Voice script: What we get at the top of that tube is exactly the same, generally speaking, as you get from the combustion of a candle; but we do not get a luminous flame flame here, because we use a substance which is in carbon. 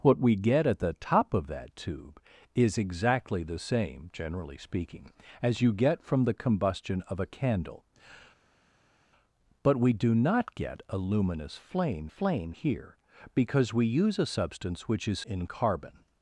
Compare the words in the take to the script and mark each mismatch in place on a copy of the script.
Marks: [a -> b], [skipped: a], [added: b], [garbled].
What we get at the top of that tube is exactly the same, generally speaking, as you get from the combustion of a candle; but we do not get a luminous flame flame here, because we use a substance which is in carbon.